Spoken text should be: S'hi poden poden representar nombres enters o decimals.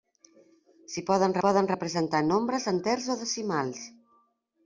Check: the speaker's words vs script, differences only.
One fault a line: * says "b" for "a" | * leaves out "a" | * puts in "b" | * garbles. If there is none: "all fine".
all fine